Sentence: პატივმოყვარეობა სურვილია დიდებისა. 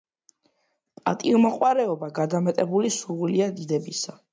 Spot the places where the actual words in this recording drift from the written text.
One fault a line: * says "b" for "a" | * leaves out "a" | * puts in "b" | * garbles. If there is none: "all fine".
* puts in "გადამეტებული"